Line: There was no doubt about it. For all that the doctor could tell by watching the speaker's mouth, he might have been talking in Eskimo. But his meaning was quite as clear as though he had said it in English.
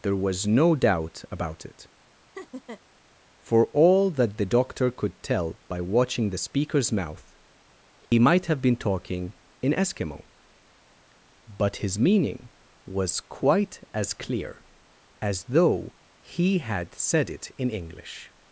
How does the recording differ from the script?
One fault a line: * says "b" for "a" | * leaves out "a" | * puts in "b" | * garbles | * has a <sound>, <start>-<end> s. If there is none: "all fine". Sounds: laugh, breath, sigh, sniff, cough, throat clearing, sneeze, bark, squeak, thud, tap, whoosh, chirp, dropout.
* has a laugh, 2.3-2.8 s
* has a dropout, 8.1-8.1 s